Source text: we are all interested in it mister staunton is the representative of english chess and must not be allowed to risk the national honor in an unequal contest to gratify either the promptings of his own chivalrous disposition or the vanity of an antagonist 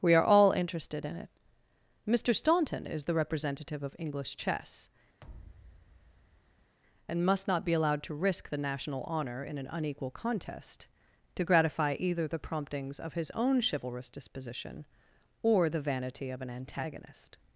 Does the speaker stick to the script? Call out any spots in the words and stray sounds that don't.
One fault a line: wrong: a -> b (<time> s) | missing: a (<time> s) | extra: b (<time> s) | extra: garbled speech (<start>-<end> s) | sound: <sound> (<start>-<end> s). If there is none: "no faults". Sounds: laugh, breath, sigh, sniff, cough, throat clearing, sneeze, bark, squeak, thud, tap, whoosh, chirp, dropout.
sound: thud (5.2-6.8 s)